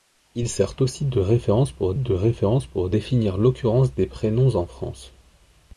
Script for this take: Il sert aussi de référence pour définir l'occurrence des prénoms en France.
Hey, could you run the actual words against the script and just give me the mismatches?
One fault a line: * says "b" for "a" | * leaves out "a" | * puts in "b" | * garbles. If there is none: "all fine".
* puts in "de référence pour"